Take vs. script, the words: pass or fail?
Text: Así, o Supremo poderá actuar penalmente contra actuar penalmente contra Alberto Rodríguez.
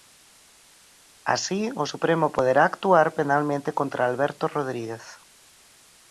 fail